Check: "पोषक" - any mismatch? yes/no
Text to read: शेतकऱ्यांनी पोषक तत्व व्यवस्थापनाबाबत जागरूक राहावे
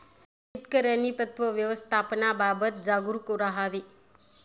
yes